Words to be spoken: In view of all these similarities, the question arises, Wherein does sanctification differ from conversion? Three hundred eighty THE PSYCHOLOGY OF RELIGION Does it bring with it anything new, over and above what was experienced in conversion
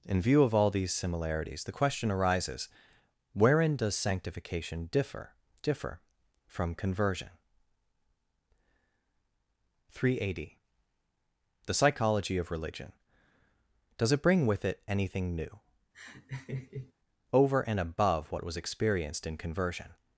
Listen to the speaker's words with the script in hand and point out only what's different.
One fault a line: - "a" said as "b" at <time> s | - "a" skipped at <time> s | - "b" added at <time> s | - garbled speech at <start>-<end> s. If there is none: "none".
- "differ" added at 5.6 s